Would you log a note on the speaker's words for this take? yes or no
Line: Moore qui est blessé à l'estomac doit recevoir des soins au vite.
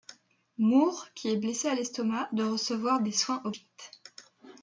no